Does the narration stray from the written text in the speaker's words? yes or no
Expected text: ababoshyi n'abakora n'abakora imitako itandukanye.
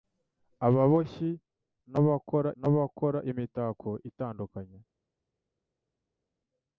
no